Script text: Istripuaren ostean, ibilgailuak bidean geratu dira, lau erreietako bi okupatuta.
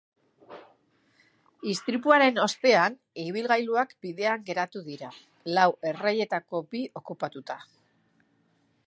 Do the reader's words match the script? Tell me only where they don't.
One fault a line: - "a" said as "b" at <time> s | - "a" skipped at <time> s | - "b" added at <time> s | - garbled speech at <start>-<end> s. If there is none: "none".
none